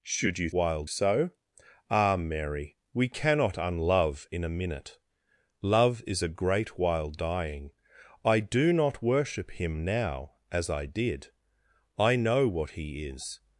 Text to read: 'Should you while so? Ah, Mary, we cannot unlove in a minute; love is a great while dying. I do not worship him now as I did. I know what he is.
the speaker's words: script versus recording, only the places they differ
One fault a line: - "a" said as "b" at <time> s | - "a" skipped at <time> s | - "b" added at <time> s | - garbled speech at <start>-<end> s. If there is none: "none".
none